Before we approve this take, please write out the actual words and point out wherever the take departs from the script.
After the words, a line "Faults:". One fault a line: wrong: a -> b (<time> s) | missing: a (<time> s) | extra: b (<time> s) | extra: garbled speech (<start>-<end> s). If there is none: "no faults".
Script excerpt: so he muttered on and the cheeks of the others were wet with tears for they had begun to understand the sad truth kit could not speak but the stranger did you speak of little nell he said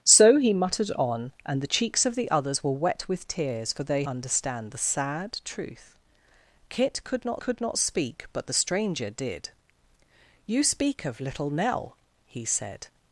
so he muttered on and the cheeks of the others were wet with tears for they understand the sad truth kit could not could not speak but the stranger did you speak of little nell he said
Faults:
missing: had begun to (4.0 s)
extra: could not (7.4 s)